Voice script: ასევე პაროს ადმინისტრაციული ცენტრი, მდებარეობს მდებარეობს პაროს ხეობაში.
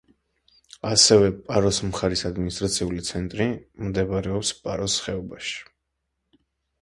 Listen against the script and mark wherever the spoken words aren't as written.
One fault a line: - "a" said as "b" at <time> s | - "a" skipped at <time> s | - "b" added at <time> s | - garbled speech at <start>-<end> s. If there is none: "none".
- "მხარის" added at 1.9 s
- "მდებარეობს" skipped at 4.5 s